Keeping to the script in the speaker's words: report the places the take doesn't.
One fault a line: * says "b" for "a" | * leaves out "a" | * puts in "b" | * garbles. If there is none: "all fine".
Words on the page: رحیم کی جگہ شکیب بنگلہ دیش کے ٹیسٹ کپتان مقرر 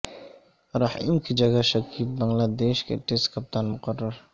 all fine